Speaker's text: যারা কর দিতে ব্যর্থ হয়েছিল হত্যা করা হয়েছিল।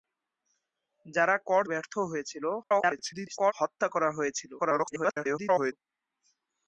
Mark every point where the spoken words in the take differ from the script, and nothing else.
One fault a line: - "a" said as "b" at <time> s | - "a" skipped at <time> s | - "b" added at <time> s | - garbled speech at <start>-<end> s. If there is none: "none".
- "দিতে" skipped at 1.6 s
- garbled speech at 2.6-3.5 s
- garbled speech at 4.6-5.7 s